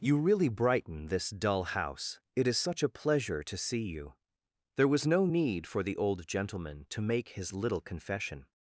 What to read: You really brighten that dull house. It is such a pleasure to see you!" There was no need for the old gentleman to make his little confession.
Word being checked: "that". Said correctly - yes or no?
no